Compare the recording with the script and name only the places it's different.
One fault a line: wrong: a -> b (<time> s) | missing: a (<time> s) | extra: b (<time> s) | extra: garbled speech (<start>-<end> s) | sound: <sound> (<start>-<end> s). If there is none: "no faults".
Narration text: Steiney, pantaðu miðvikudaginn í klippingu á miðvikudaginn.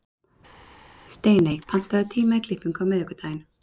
wrong: miðvikudaginn -> tíma (2.2 s)